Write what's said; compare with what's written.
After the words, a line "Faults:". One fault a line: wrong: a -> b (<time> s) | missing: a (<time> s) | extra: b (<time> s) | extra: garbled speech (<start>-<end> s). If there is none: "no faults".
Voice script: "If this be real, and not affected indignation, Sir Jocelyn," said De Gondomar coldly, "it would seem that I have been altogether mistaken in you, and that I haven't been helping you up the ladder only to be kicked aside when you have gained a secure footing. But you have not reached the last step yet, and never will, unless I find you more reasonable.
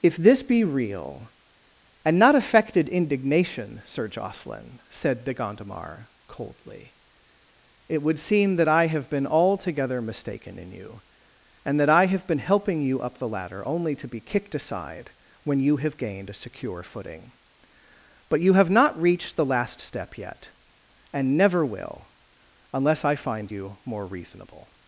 "If this be real, and not affected indignation, Sir Jocelyn," said De Gondomar coldly, "it would seem that I have been altogether mistaken in you, and that I have been helping you up the ladder only to be kicked aside when you have gained a secure footing. But you have not reached the last step yet, and never will, unless I find you more reasonable.
Faults:
wrong: haven't -> have (12.1 s)